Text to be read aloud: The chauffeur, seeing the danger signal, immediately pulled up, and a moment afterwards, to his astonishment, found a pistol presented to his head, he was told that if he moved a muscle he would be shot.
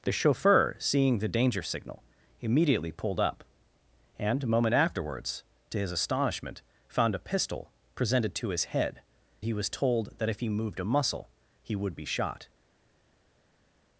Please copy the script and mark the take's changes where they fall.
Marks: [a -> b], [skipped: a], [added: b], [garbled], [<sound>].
The chauffeur, seeing the danger signal, immediately pulled up, and a moment afterwards, to his astonishment, found a pistol presented to his head, he was told that if he moved a muscle he would be shot.